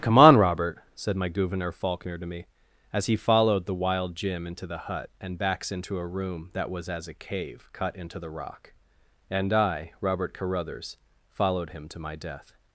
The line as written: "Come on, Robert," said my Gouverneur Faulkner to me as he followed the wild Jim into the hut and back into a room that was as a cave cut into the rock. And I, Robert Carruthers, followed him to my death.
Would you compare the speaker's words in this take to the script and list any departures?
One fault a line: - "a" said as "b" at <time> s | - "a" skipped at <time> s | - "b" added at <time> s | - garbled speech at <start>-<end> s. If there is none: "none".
- "back" said as "backs" at 5.4 s